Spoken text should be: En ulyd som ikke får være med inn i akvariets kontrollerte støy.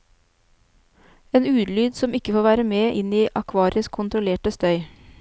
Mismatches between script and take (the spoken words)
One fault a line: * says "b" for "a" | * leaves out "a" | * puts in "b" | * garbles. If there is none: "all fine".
all fine